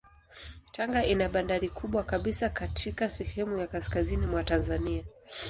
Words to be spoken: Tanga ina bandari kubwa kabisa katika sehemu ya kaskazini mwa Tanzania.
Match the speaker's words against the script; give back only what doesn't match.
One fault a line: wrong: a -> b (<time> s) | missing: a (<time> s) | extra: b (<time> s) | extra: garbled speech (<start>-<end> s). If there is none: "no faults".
no faults